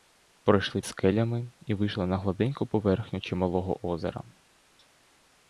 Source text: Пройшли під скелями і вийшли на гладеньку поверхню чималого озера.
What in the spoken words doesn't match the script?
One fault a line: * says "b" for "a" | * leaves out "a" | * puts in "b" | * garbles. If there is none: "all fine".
* leaves out "під"